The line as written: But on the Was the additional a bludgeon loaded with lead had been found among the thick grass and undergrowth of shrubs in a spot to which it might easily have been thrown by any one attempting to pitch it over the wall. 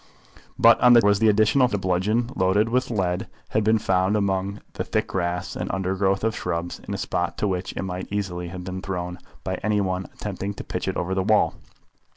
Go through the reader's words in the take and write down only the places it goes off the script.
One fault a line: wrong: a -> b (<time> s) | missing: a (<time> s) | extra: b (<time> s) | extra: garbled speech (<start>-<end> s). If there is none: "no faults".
no faults